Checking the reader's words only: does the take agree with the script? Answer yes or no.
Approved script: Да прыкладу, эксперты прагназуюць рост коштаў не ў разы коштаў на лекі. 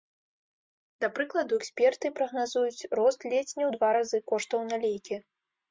no